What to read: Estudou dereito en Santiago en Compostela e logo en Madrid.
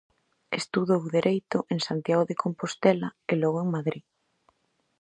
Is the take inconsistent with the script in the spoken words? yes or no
yes